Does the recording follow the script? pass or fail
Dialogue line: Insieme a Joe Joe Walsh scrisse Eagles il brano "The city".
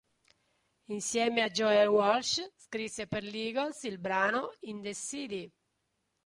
fail